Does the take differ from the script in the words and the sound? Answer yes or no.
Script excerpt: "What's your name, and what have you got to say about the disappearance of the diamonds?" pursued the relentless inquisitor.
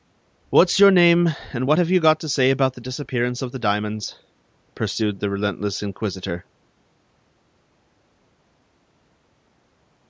no